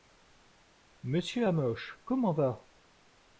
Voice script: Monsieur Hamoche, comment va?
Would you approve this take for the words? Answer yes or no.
yes